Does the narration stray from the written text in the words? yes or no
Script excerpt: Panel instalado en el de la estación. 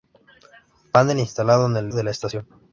no